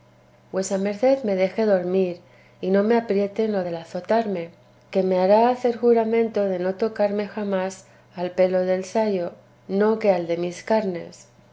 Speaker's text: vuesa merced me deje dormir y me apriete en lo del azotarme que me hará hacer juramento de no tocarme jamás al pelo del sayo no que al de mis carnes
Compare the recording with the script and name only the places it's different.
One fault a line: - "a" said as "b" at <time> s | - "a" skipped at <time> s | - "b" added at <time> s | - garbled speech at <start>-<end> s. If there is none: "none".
- "no" added at 2.7 s